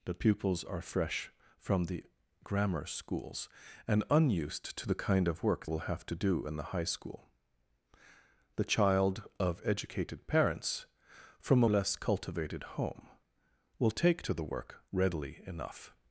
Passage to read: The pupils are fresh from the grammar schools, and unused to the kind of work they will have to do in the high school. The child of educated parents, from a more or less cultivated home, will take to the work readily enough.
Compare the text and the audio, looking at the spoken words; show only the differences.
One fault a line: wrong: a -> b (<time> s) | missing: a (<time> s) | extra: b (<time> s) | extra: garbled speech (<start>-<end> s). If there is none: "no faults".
missing: they (5.7 s)
missing: more or (11.7 s)